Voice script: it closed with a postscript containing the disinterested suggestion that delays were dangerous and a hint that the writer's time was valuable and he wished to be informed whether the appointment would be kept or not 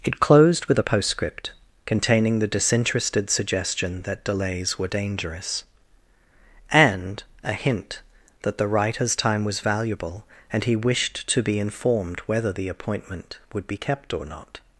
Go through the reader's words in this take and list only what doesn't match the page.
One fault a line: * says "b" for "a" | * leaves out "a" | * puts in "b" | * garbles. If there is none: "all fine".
all fine